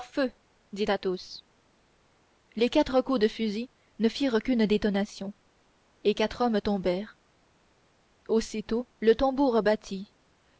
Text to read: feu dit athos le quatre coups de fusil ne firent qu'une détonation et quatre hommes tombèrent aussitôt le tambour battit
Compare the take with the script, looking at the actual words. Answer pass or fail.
fail